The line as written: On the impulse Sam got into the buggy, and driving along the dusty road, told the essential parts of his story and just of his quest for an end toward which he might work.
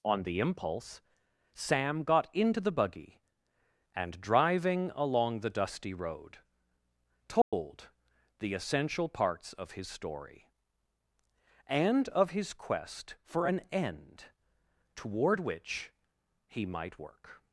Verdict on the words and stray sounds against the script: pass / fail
fail